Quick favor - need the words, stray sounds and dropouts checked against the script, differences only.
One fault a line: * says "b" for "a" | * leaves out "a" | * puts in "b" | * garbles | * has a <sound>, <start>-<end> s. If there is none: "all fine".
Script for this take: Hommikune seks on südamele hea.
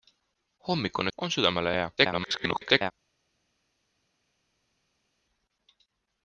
* leaves out "seks"
* garbles